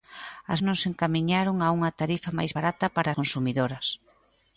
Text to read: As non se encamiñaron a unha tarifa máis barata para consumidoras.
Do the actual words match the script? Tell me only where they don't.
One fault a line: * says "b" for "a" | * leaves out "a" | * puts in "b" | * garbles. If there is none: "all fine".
all fine